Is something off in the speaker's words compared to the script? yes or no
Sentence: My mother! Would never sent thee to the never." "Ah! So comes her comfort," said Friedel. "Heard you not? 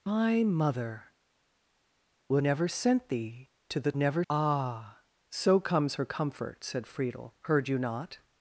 no